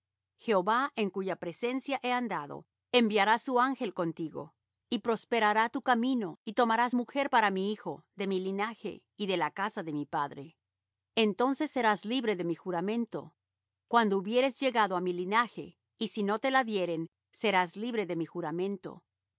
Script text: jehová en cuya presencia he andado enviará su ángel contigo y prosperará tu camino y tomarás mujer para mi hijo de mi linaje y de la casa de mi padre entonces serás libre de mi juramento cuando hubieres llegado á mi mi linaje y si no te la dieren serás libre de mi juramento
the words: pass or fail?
fail